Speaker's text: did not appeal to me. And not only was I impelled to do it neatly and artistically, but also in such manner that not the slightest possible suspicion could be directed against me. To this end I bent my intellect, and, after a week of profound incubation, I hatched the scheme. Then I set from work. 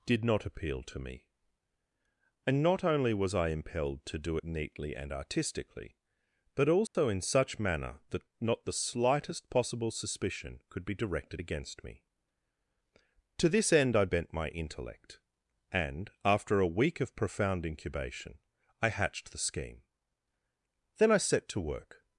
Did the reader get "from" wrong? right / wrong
wrong